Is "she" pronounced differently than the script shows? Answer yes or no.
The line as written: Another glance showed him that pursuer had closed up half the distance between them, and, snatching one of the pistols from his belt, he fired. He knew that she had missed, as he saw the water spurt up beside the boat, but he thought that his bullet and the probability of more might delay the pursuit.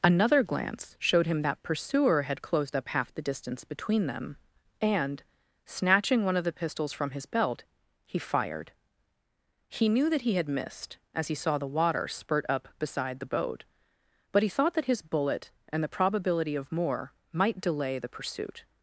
yes